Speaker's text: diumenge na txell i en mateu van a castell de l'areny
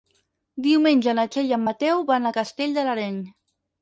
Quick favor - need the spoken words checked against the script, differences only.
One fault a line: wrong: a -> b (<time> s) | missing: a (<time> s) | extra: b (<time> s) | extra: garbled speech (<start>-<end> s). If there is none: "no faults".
no faults